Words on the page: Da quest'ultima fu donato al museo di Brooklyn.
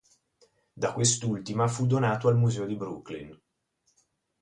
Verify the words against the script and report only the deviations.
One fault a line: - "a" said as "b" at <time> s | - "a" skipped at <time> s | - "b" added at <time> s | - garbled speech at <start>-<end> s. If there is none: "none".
none